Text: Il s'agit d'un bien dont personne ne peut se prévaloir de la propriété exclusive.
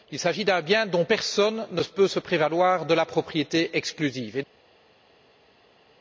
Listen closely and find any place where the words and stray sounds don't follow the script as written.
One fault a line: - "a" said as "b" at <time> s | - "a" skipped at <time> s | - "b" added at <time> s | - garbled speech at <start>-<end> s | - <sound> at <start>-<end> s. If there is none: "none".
none